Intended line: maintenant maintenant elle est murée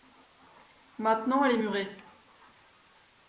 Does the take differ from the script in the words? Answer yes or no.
yes